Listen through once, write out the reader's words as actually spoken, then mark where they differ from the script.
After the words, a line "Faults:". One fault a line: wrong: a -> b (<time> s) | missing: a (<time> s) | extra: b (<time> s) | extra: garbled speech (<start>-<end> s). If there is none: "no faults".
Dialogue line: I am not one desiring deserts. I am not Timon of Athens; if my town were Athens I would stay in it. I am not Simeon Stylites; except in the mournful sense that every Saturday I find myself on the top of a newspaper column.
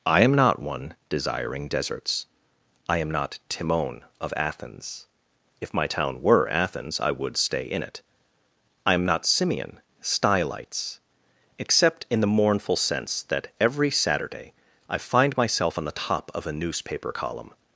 I am not one desiring deserts. I am not Timon of Athens; if my town were Athens I would stay in it. I am not Simeon Stylites; except in the mournful sense that every Saturday I find myself on the top of a newspaper column.
Faults:
no faults